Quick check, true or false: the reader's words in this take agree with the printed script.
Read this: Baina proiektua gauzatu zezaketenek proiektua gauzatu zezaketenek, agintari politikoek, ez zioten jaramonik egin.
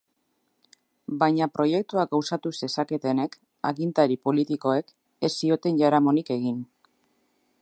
false